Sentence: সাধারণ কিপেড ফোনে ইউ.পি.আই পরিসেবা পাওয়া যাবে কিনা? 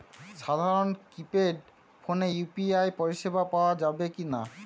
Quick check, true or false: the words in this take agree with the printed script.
true